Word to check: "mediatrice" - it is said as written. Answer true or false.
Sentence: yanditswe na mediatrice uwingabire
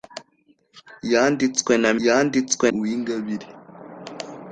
false